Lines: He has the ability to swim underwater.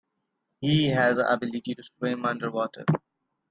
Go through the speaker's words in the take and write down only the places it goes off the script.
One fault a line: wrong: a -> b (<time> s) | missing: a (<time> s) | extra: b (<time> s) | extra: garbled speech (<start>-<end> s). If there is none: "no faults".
no faults